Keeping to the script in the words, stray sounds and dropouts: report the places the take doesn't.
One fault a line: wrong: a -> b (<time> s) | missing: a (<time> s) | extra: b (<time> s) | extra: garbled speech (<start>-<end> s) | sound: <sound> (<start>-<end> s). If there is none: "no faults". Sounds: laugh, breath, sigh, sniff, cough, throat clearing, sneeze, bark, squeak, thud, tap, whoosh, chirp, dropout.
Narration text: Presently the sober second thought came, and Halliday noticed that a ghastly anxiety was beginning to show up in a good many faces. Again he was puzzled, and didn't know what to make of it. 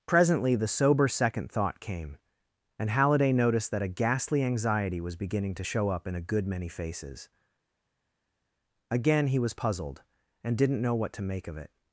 no faults